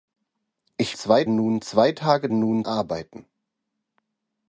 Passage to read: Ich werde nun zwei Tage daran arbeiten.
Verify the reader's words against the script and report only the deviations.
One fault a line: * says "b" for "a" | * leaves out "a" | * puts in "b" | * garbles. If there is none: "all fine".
* says "zwei" for "werde"
* says "nun" for "daran"